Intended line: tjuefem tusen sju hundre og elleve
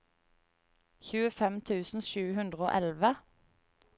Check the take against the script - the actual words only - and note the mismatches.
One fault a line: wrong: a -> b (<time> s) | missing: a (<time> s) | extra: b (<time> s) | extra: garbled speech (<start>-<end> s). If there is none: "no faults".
no faults